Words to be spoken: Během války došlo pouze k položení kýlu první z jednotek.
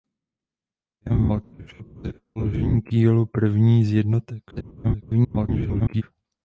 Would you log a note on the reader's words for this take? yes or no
yes